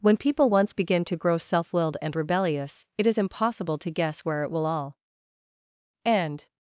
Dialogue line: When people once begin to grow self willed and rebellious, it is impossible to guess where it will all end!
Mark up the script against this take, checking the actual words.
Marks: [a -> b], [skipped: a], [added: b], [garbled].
When people once begin to grow self willed and rebellious, it is impossible to guess where it will all end!